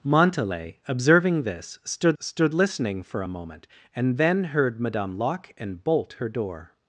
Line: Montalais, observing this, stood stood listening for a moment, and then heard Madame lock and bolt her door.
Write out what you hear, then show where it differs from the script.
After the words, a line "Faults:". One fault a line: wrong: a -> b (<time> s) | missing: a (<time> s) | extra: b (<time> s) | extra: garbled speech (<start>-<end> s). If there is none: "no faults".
Montalais, observing this, stood stood listening for a moment, and then heard Madame lock and bolt her door.
Faults:
no faults